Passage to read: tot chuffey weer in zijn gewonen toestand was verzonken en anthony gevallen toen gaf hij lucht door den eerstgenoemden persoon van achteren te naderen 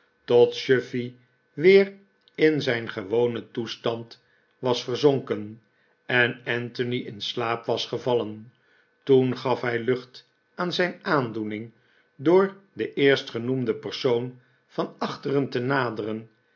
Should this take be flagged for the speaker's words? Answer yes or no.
yes